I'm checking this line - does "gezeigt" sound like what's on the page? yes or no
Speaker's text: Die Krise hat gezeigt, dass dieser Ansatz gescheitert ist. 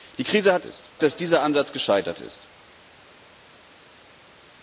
no